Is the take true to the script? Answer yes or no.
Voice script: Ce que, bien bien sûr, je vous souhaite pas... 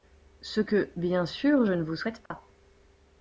no